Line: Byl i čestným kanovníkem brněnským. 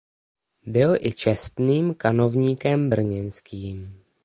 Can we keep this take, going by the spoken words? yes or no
yes